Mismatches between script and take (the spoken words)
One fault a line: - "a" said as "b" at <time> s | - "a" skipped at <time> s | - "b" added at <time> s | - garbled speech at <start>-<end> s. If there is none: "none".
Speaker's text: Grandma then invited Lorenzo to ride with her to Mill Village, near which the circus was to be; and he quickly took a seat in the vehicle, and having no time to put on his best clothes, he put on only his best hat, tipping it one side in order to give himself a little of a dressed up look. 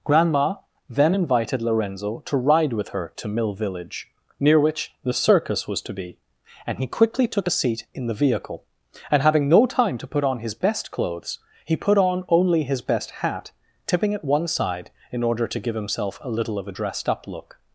none